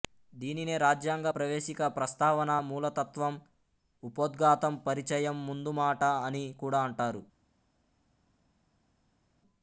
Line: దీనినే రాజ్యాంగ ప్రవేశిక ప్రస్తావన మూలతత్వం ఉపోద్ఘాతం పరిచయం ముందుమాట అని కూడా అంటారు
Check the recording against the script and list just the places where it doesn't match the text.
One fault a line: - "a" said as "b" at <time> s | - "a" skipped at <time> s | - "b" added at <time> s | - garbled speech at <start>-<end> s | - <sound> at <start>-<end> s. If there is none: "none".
none